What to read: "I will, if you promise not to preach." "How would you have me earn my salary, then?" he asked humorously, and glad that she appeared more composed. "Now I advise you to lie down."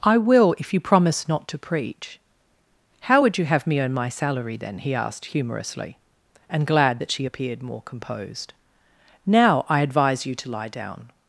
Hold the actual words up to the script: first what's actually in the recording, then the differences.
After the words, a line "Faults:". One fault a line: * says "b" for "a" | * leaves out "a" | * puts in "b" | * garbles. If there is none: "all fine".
"I will, if you promise not to preach." "How would you have me earn my salary, then?" he asked humorously, and glad that she appeared more composed. "Now I advise you to lie down."
Faults:
all fine